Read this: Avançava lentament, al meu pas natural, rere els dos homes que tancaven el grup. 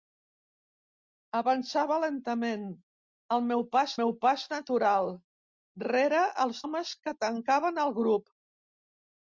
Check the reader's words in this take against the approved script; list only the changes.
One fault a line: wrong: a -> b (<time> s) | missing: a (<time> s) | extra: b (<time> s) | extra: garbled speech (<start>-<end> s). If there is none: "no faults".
extra: meu pas (4.0 s)
missing: dos (6.6 s)